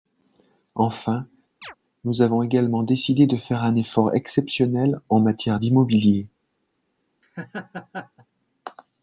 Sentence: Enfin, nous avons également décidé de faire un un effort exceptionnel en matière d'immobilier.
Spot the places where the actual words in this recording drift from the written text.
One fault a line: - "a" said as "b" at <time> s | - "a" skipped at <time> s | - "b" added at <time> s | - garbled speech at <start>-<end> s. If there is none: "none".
- "un" skipped at 3.7 s